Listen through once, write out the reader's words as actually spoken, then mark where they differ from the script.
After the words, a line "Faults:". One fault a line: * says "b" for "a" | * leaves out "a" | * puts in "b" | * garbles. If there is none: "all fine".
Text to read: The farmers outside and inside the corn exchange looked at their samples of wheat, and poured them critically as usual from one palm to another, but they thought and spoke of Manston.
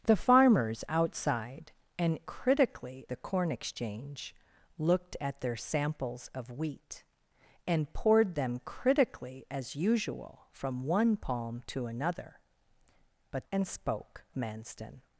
The farmers outside and critically the corn exchange looked at their samples of wheat, and poured them critically as usual from one palm to another, but and spoke Manston.
Faults:
* says "critically" for "inside"
* leaves out "they thought"
* leaves out "of"